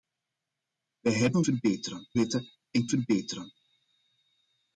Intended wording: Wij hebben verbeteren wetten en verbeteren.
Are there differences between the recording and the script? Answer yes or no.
no